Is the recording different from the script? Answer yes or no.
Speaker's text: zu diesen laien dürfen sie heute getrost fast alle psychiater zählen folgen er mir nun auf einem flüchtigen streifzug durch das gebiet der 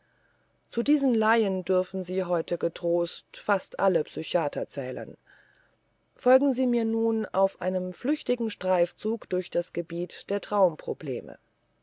yes